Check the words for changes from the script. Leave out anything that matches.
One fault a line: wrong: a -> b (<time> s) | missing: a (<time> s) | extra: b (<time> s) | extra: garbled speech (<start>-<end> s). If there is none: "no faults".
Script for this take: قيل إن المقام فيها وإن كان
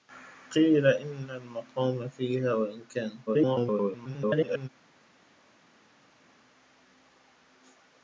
extra: garbled speech (3.3-4.7 s)